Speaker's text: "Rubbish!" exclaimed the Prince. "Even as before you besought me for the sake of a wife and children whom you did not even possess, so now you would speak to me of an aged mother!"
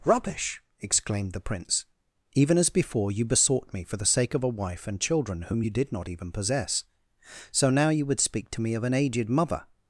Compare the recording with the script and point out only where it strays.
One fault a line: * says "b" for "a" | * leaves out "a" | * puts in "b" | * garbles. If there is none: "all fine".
all fine